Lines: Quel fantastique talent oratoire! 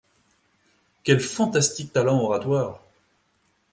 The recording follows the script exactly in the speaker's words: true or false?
true